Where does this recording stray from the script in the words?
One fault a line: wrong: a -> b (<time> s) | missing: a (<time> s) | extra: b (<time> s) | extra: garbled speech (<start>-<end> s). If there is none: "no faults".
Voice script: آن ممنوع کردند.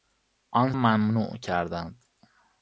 no faults